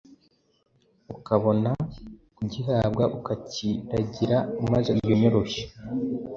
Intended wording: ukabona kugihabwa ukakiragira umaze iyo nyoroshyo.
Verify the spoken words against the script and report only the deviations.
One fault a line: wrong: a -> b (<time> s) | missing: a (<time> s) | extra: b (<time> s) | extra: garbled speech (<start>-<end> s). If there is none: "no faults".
no faults